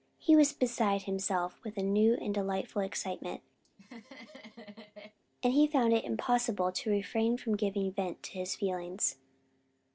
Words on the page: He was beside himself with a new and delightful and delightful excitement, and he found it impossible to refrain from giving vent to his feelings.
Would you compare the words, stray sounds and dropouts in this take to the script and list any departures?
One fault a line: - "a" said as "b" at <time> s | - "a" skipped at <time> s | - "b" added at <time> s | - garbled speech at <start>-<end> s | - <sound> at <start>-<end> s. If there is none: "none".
- "and delightful" skipped at 2.8 s
- laugh at 3.6-5.2 s